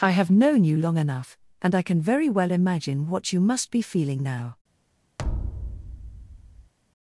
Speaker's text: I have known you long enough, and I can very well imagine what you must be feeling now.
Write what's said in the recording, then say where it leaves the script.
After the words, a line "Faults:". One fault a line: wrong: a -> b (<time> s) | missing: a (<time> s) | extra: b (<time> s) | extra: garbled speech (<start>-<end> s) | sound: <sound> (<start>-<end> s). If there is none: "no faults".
I have known you long enough, and I can very well imagine what you must be feeling now.
Faults:
sound: thud (5.2-6.7 s)